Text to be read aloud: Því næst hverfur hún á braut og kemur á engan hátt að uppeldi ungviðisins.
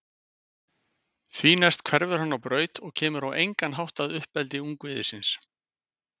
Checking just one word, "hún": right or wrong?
wrong